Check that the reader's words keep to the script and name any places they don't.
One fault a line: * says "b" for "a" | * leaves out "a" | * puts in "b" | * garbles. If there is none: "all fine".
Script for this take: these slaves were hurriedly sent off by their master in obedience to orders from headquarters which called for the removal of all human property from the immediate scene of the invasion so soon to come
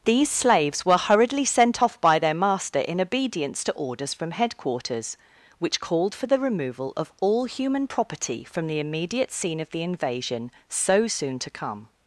all fine